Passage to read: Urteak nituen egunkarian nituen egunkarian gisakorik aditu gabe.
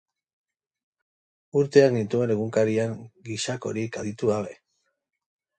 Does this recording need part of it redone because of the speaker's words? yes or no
yes